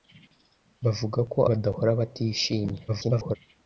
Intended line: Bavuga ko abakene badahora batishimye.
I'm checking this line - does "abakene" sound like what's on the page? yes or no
no